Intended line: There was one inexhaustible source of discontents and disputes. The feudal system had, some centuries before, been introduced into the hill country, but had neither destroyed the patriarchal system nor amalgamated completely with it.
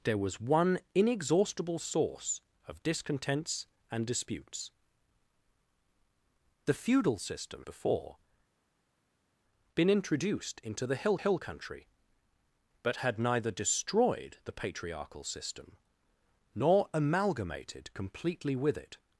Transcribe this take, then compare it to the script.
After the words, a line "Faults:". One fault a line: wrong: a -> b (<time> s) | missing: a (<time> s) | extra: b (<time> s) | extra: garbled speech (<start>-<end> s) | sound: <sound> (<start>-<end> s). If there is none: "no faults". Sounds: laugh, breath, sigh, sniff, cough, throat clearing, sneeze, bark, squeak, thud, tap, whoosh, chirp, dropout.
There was one inexhaustible source of discontents and disputes. The feudal system before, been introduced into the hill hill country, but had neither destroyed the patriarchal system nor amalgamated completely with it.
Faults:
missing: had some centuries (7.7 s)
extra: hill (11.2 s)